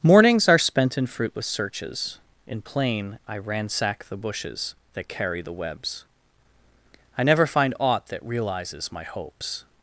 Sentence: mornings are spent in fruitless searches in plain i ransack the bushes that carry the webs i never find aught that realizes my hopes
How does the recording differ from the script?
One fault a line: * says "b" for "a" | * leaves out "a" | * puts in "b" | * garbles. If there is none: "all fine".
all fine